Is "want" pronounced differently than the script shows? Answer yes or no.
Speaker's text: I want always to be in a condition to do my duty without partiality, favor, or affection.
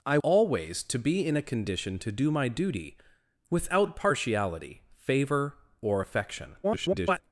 yes